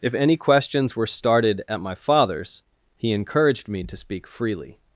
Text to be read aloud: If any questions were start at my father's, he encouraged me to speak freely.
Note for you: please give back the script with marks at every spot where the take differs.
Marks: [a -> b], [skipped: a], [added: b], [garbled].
If any questions were [start -> started] at my father's, he encouraged me to speak freely.